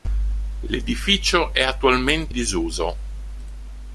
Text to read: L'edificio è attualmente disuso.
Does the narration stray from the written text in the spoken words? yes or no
no